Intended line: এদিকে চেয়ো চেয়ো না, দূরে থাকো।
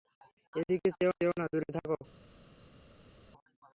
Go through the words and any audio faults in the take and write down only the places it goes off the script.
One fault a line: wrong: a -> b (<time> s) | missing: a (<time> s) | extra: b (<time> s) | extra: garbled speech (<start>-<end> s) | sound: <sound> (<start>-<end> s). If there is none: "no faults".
no faults